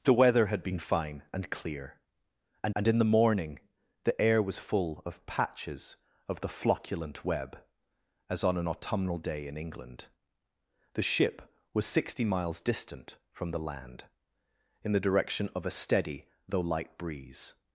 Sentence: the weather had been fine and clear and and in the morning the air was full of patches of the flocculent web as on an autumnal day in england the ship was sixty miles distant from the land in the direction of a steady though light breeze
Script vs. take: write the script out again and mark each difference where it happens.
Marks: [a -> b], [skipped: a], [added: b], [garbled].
the weather had been fine and clear and and in the morning the air was full of patches of the flocculent web as on an autumnal day in england the ship was sixty miles distant from the land in the direction of a steady though light breeze